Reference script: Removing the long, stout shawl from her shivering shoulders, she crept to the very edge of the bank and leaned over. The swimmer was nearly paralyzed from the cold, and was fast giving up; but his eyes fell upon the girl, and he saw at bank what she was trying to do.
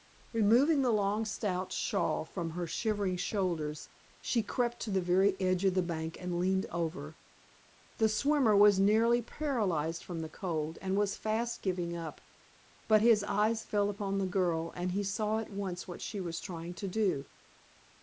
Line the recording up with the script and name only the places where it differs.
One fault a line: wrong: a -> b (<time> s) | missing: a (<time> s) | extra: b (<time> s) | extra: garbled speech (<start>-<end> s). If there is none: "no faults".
wrong: bank -> once (15.5 s)